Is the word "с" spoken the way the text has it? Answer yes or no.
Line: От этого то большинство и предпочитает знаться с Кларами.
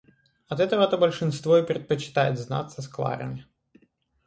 yes